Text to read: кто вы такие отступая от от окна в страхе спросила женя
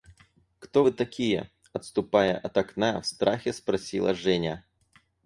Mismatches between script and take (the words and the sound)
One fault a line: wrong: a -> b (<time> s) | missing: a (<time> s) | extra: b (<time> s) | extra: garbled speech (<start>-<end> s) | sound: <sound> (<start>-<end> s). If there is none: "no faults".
missing: от (2.6 s)